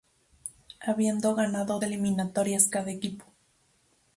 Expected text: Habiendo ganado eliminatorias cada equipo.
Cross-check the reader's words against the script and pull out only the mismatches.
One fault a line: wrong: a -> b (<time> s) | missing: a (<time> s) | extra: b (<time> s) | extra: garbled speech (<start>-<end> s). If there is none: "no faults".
no faults